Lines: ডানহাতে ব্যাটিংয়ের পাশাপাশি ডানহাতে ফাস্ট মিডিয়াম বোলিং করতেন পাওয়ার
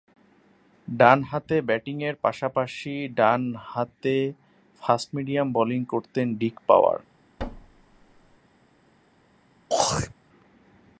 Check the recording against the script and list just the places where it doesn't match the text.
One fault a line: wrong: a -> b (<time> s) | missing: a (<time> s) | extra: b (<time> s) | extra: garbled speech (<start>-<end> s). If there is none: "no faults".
extra: ডিক (6.3 s)